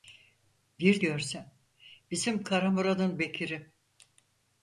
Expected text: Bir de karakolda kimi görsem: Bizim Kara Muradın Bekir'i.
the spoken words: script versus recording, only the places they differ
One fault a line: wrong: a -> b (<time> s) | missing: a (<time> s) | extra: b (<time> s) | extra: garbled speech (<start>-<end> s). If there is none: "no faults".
missing: de karakolda kimi (1.0 s)